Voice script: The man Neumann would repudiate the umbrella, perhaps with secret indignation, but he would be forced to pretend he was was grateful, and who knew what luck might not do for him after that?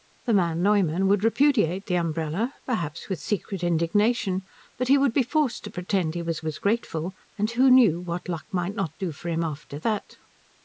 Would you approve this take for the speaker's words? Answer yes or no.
yes